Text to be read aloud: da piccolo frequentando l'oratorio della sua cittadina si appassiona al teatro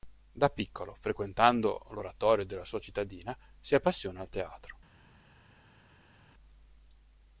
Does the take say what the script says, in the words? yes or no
yes